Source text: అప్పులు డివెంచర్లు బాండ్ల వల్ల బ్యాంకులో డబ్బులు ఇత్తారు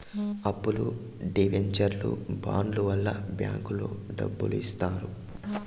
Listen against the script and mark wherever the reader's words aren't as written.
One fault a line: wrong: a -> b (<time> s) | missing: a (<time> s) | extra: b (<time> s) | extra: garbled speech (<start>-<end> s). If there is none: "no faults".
no faults